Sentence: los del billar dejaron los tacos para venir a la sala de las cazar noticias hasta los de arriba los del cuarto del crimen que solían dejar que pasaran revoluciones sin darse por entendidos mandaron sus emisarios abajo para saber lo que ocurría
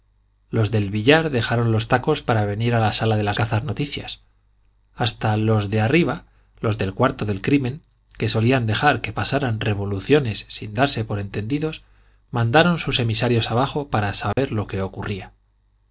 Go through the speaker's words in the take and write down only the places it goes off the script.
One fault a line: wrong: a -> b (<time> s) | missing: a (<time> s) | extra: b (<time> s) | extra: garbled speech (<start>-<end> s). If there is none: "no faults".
no faults